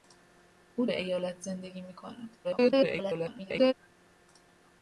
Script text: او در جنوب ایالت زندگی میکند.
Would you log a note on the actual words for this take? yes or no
yes